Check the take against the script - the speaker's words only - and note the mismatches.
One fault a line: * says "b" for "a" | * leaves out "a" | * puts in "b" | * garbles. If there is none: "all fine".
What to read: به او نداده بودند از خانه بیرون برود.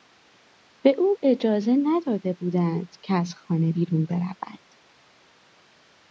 * puts in "اجازه"
* puts in "که"